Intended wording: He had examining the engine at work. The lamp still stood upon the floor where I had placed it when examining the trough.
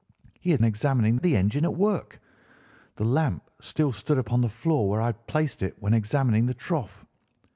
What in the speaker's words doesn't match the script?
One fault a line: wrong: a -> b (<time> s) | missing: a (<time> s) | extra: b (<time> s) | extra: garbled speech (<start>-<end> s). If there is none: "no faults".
no faults